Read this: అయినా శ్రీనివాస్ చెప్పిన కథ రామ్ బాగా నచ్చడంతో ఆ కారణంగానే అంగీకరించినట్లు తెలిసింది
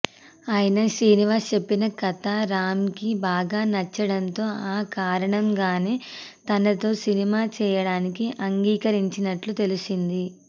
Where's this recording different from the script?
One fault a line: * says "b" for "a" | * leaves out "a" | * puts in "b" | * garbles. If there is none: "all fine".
* puts in "కి"
* puts in "తనతో సినిమా చేయడానికి"